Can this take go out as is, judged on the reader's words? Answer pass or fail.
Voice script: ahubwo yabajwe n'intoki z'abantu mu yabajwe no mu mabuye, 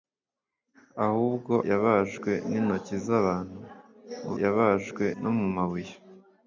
pass